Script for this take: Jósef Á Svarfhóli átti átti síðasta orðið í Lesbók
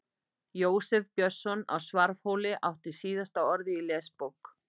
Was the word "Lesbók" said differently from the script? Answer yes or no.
no